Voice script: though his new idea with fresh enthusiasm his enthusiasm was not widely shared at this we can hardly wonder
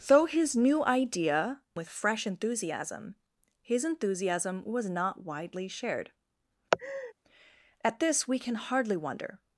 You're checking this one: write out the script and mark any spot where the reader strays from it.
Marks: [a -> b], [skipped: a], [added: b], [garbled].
though his new idea with fresh enthusiasm his enthusiasm was not widely shared at this we can hardly wonder